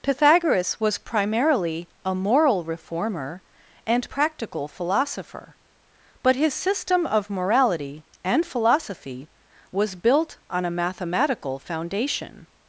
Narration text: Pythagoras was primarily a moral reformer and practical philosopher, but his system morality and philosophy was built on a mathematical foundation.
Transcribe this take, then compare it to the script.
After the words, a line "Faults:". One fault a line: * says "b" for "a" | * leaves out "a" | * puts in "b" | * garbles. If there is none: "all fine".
Pythagoras was primarily a moral reformer and practical philosopher, but his system of morality and philosophy was built on a mathematical foundation.
Faults:
* puts in "of"